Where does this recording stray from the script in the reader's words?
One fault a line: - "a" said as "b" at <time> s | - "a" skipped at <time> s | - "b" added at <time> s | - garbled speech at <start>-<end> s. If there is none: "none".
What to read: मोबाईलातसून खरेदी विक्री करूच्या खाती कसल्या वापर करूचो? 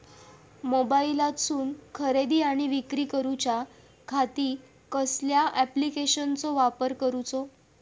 - "आणि" added at 2.4 s
- "ॲप्लिकेशनाचो" added at 5.6 s